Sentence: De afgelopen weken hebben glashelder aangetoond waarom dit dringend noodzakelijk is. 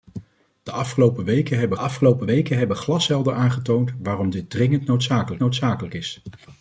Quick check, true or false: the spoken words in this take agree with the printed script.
false